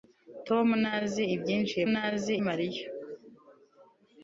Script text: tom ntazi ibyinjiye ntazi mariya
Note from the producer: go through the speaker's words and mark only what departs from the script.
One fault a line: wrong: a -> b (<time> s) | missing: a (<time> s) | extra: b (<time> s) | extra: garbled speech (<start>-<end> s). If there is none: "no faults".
no faults